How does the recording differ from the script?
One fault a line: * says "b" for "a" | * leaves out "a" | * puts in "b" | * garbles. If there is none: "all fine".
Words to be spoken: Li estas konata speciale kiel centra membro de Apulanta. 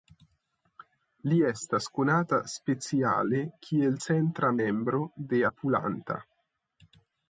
all fine